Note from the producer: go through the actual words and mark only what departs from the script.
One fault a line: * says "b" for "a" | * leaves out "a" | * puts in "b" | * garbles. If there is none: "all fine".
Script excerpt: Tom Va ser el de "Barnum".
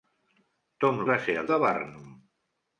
all fine